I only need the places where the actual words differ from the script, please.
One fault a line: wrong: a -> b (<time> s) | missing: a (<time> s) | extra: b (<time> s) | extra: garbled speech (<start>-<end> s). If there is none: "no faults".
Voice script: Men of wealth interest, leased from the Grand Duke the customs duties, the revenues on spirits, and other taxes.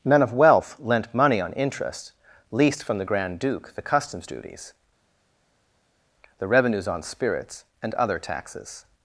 extra: lent money on (0.8 s)